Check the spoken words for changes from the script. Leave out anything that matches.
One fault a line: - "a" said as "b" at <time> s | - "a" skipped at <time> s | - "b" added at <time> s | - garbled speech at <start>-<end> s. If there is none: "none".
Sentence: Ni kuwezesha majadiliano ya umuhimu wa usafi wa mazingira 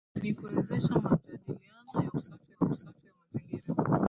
- "umuhimu" said as "usafi" at 2.2 s